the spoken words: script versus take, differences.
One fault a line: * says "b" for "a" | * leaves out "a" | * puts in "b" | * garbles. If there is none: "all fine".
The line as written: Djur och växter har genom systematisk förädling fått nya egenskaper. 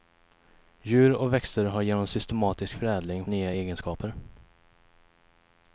* leaves out "fått"